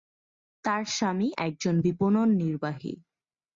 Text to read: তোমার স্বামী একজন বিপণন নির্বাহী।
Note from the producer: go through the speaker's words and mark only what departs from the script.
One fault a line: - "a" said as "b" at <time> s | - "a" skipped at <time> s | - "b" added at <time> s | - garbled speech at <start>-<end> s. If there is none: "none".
- "তোমার" said as "তার" at 0.6 s